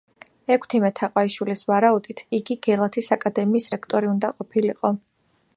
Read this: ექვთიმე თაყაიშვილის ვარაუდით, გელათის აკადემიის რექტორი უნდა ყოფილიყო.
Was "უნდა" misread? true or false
false